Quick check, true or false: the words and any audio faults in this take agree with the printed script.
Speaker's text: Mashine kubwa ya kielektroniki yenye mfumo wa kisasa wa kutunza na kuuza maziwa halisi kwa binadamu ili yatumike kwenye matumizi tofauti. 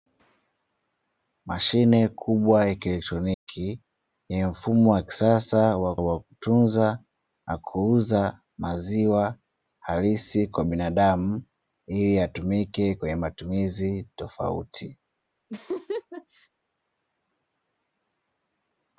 false